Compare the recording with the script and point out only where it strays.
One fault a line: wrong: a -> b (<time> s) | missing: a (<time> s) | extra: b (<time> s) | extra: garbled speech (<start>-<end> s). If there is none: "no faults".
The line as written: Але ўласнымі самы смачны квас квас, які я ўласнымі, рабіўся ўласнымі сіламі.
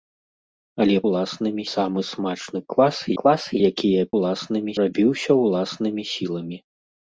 no faults